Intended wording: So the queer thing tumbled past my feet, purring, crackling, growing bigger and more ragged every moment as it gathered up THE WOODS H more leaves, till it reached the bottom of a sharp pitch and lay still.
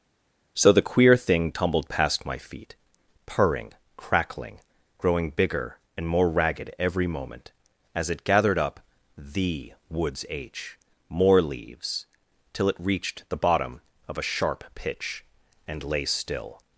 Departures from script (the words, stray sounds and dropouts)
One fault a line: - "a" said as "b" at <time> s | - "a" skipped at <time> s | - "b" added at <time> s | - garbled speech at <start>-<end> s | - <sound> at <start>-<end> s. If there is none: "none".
none